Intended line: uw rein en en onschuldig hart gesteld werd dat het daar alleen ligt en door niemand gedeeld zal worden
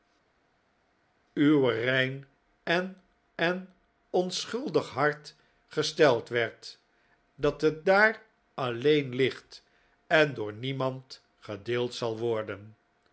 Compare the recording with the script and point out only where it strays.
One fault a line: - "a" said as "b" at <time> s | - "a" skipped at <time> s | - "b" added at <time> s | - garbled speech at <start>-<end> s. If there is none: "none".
none